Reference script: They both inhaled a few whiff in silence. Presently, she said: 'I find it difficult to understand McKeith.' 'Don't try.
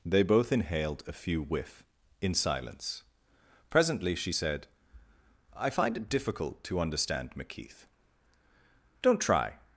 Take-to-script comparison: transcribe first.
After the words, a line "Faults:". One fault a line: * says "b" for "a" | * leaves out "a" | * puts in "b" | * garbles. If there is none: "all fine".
They both inhaled a few whiff in silence. Presently, she said: 'I find it difficult to understand McKeith.' 'Don't try.
Faults:
all fine